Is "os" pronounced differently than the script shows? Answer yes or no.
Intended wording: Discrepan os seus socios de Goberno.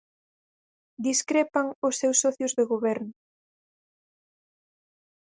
no